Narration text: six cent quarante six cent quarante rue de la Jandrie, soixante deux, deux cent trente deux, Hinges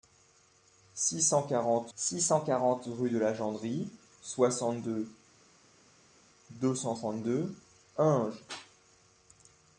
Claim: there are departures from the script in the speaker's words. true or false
false